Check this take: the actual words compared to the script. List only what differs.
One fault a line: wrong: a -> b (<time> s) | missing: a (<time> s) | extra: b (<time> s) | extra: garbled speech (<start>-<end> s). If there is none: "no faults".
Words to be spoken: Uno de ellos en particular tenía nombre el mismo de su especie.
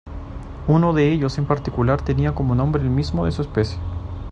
extra: como (2.3 s)